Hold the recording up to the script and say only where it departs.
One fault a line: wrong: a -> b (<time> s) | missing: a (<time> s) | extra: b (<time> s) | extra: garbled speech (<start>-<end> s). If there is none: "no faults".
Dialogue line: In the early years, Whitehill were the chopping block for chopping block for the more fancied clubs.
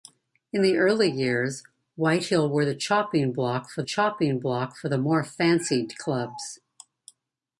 no faults